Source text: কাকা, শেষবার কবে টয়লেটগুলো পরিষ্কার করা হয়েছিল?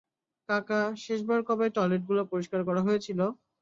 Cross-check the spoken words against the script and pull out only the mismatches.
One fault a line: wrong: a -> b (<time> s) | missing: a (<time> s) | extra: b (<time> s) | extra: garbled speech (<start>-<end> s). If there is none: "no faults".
no faults